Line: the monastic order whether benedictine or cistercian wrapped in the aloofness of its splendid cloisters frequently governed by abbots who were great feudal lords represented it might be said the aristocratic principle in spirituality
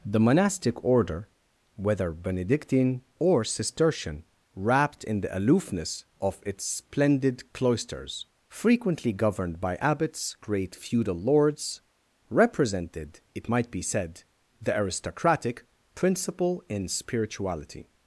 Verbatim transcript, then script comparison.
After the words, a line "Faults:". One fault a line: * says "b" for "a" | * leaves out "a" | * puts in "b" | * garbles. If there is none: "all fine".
the monastic order whether benedictine or cistercian wrapped in the aloofness of its splendid cloisters frequently governed by abbots great feudal lords represented it might be said the aristocratic principle in spirituality
Faults:
* leaves out "who were"